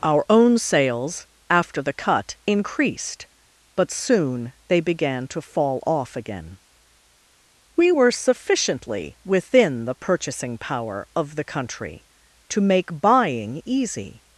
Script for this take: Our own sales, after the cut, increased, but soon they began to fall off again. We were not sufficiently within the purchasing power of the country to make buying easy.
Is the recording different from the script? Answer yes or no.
yes